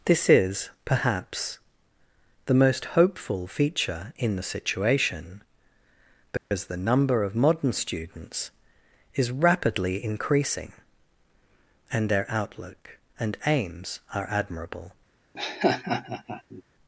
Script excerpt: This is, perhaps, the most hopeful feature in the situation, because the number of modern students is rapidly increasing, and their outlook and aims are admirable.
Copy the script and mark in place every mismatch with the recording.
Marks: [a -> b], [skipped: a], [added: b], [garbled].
This is, perhaps, the most hopeful feature in the situation, because the number of modern students is rapidly increasing, and their outlook and aims are admirable.